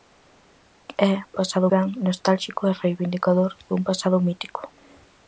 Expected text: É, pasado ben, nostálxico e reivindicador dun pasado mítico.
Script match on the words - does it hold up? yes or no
yes